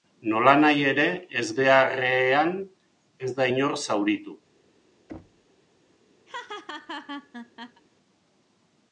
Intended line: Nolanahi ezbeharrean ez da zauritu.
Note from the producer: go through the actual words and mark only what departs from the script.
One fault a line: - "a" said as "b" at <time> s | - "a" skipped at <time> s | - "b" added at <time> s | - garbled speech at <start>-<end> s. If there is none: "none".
- "ere" added at 0.9 s
- "inor" added at 3.5 s